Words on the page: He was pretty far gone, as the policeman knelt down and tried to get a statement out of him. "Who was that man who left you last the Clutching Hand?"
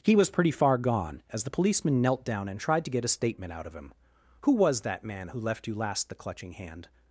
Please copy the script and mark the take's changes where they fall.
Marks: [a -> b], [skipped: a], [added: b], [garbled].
He was pretty far gone, as the policeman knelt down and tried to get a statement out of him. "Who was that man who left you last the Clutching Hand?"